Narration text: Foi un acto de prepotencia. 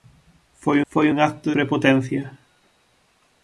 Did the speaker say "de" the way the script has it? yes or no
no